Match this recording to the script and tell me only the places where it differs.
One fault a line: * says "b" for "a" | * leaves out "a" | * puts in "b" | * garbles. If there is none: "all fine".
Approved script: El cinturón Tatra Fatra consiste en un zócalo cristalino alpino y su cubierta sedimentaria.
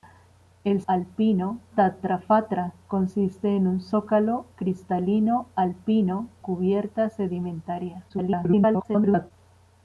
* says "alpino" for "cinturón"
* leaves out "y su"
* garbles